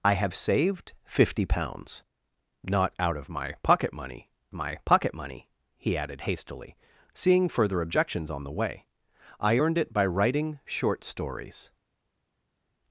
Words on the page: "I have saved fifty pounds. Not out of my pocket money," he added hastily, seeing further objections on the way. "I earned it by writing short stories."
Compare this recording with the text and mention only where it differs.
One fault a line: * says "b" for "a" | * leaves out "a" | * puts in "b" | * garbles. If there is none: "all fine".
* puts in "my pocket money"